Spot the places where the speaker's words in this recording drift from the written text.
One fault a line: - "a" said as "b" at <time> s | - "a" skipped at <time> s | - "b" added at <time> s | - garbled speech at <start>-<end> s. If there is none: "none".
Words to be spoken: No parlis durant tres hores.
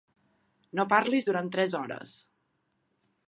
none